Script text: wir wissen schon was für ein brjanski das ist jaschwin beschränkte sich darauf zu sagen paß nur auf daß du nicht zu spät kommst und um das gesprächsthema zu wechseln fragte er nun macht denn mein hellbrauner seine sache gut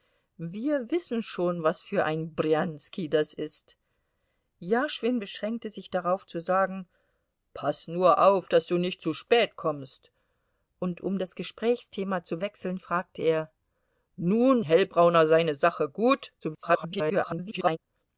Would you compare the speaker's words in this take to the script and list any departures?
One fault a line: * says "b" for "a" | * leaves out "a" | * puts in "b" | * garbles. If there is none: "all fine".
* leaves out "macht denn mein"
* garbles